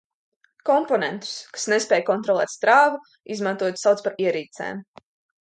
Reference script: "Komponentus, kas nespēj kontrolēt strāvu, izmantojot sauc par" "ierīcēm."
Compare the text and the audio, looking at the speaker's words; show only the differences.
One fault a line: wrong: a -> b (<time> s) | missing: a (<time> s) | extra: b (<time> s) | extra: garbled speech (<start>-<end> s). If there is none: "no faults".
no faults